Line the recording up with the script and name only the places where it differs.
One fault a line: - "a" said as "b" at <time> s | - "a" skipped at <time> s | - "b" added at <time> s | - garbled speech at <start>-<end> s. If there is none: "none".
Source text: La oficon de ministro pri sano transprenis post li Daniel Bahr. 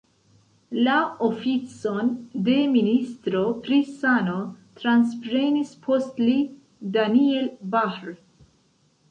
none